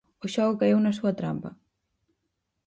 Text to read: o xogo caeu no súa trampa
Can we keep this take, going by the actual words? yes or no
no